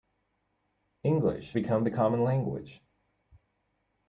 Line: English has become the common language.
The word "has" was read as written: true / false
false